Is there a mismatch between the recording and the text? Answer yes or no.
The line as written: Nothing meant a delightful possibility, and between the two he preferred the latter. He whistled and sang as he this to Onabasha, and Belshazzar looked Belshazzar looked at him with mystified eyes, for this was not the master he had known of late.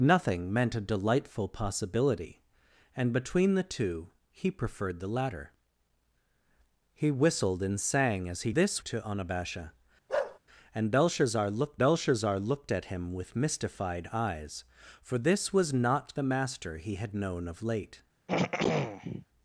no